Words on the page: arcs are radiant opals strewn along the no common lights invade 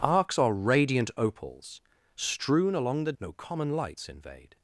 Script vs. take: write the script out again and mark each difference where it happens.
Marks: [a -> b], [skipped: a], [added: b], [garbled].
arcs are radiant opals strewn along the no common lights invade